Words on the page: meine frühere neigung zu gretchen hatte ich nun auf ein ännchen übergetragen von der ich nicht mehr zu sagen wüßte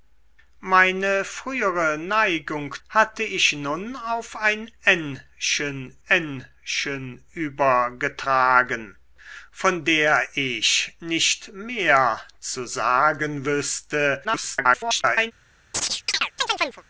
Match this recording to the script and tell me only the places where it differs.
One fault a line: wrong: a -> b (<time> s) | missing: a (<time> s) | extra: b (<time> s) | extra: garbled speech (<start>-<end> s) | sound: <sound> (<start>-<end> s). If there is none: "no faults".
missing: zu gretchen (2.7 s)
extra: ännchen (6.1 s)
extra: garbled speech (14.2-15.3 s)
sound: chirp (15.7-16.8 s)